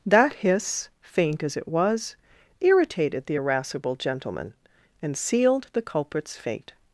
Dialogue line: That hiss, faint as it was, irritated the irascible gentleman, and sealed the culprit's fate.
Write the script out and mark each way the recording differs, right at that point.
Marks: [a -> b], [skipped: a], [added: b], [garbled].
That hiss, faint as it was, irritated the irascible gentleman, and sealed the culprit's fate.